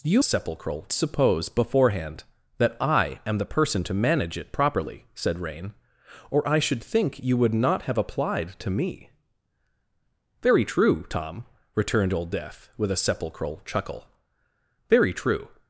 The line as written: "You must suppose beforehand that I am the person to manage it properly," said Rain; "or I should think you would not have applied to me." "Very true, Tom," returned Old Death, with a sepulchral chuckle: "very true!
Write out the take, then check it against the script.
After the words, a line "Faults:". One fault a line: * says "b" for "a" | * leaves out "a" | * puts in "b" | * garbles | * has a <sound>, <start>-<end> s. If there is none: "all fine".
"You sepulchral suppose beforehand that I am the person to manage it properly," said Rain; "or I should think you would not have applied to me." "Very true, Tom," returned Old Death, with a sepulchral chuckle: "very true!
Faults:
* says "sepulchral" for "must"